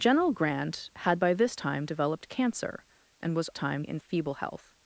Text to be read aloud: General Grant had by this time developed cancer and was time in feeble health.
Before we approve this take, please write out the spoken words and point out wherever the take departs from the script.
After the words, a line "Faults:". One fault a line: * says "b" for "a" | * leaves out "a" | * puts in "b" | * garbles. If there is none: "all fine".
General Grant had by this time developed cancer and was time in feeble health.
Faults:
all fine